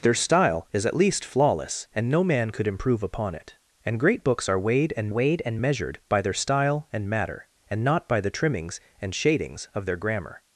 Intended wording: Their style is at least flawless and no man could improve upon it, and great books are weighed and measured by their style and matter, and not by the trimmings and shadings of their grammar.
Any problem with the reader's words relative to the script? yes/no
yes